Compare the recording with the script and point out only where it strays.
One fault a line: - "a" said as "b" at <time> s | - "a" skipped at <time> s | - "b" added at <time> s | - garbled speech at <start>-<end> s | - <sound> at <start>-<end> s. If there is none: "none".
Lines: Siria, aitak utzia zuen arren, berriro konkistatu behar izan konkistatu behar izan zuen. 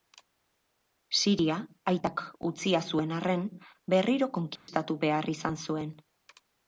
- dropout at 4.6-4.7 s
- "konkistatu behar izan" skipped at 5.6 s